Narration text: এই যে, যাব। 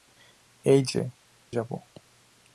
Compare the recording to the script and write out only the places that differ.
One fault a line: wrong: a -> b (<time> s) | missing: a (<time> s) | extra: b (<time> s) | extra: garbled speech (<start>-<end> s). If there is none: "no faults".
no faults